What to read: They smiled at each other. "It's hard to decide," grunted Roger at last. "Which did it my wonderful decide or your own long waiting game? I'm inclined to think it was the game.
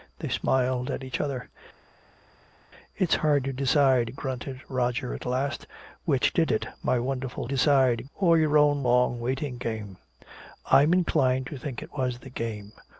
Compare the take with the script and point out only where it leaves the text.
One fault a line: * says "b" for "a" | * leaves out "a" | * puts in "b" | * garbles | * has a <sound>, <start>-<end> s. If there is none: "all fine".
all fine